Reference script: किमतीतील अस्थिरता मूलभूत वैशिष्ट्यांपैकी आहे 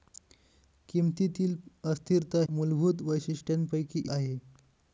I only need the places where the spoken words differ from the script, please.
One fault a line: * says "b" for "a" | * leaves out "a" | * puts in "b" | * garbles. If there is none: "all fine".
all fine